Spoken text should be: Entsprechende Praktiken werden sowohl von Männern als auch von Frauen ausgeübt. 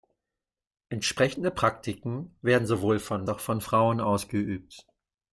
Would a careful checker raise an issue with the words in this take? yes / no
yes